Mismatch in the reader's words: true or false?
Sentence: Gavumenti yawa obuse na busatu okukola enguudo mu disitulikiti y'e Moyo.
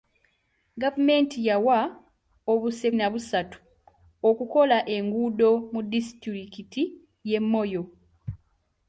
false